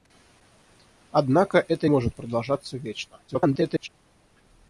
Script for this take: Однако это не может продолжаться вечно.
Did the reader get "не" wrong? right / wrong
wrong